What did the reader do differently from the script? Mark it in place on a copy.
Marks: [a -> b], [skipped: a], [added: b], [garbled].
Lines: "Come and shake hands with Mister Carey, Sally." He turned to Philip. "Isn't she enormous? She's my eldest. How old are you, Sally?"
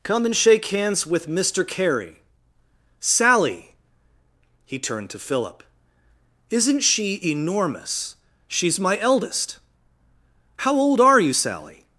"Come and shake hands with Mister Carey, Sally." He turned to Philip. "Isn't she enormous? She's my eldest. How old are you, Sally?"